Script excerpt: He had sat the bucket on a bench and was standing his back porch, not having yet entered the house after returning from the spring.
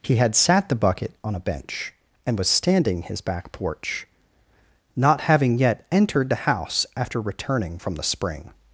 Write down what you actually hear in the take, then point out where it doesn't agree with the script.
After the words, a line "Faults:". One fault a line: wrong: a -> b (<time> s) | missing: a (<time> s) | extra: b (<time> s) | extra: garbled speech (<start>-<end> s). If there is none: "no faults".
He had sat the bucket on a bench and was standing his back porch, not having yet entered the house after returning from the spring.
Faults:
no faults